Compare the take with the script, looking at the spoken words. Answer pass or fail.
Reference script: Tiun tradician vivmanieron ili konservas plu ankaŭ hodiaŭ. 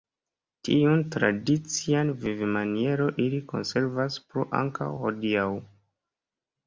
pass